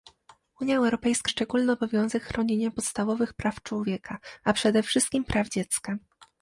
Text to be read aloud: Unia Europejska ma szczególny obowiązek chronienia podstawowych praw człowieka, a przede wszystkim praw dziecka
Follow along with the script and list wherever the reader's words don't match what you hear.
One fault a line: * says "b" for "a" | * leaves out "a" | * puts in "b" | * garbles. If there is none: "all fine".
* leaves out "ma"